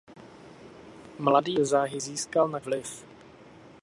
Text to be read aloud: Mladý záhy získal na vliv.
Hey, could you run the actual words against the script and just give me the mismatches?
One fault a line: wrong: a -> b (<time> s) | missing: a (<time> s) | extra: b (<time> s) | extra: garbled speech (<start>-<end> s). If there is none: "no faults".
no faults